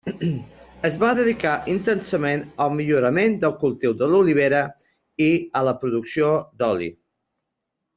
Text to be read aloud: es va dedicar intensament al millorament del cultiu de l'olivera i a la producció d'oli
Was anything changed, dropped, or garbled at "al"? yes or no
no